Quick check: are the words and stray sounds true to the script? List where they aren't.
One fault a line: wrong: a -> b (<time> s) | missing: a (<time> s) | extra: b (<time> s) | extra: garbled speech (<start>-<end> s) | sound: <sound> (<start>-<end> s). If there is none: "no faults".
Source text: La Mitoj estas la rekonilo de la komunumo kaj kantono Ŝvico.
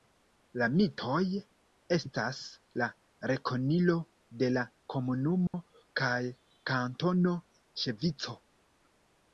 sound: dropout (5.5-5.5 s)